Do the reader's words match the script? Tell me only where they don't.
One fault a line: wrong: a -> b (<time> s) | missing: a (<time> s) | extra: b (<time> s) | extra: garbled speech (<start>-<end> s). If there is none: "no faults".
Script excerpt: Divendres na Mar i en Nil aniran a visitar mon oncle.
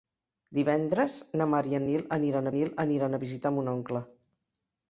extra: Nil aniran (2.6 s)